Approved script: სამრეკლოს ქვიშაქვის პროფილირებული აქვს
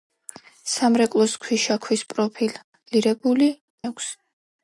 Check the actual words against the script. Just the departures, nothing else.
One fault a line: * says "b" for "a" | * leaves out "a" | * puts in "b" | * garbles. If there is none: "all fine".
all fine